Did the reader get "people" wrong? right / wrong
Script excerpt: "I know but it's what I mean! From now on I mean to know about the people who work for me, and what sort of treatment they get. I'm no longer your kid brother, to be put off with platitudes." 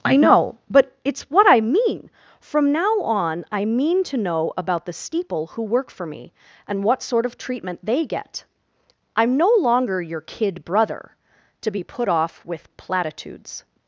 wrong